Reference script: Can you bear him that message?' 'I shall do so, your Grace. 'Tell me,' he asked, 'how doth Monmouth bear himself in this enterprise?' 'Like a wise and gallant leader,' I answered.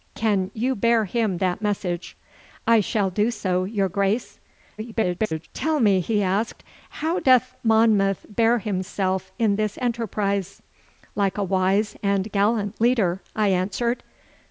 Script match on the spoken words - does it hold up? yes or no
no